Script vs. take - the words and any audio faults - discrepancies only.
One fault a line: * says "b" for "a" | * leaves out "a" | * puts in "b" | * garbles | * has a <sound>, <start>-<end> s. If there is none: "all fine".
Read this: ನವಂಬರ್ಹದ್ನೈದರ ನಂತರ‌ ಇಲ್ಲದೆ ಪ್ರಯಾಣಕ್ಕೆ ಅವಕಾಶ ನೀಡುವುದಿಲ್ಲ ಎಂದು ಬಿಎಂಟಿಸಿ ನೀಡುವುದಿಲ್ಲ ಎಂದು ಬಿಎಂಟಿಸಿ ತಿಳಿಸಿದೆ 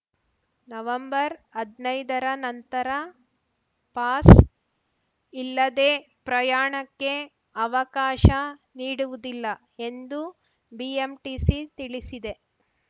* puts in "ಪಾಸ್"
* leaves out "ನೀಡುವುದಿಲ್ಲ ಎಂದು ಬಿಎಂಟಿಸಿ"